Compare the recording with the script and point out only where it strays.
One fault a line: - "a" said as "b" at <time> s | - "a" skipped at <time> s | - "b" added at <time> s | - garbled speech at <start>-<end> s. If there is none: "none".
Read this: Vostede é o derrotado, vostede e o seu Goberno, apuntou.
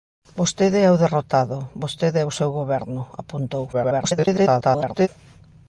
- garbled speech at 3.7-5.1 s